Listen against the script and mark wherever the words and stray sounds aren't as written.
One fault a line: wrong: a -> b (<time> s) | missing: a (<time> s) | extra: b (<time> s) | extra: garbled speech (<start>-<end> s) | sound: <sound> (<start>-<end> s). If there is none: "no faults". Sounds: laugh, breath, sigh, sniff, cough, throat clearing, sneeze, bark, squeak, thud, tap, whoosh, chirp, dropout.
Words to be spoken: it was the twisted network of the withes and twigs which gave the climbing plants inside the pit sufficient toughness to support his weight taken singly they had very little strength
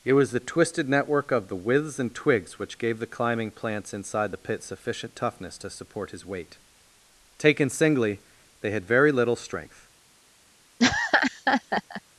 sound: laugh (10.8-12.0 s)